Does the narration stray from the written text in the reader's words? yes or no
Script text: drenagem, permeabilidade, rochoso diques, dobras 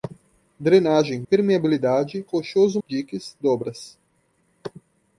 no